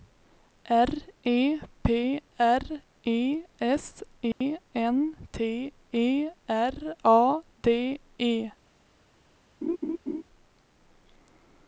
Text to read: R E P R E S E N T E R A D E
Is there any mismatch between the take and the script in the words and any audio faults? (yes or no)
yes